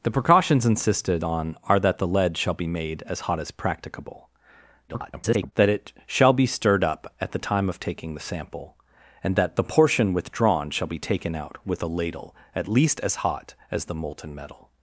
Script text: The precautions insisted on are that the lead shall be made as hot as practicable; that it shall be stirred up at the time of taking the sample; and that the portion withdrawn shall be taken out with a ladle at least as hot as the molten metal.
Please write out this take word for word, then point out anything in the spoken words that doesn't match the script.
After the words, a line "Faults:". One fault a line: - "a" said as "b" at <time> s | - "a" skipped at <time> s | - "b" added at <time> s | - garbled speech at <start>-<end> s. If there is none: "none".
The precautions insisted on are that the lead shall be made as hot as practicable; [garbled] that it shall be stirred up at the time of taking the sample; and that the portion withdrawn shall be taken out with a ladle at least as hot as the molten metal.
Faults:
- garbled speech at 4.9-5.5 s